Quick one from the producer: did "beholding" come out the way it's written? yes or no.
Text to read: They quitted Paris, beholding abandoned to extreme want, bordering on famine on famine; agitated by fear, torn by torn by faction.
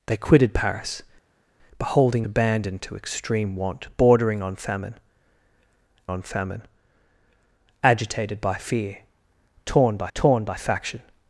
yes